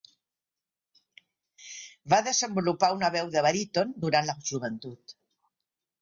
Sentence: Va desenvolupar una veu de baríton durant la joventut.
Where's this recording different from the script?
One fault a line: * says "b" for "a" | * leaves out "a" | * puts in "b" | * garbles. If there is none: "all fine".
all fine